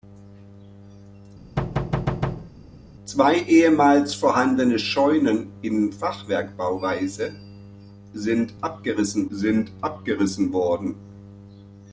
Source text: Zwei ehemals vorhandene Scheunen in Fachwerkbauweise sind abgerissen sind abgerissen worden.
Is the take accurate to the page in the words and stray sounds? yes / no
no